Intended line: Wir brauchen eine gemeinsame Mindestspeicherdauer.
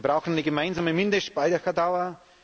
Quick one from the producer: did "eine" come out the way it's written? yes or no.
yes